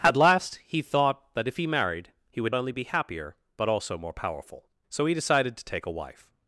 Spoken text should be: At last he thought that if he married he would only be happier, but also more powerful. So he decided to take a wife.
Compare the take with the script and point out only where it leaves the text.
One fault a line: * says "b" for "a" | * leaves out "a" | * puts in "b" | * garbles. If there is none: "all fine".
all fine